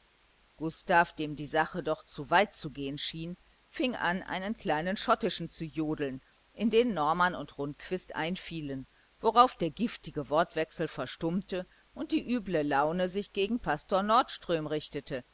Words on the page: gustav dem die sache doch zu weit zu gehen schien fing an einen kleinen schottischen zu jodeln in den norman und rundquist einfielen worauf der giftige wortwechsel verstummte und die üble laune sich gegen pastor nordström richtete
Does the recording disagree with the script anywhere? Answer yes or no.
no